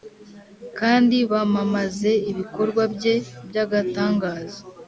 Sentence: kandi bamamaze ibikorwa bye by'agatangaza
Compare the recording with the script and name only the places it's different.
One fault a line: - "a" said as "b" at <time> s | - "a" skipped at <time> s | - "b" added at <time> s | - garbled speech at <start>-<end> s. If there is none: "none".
none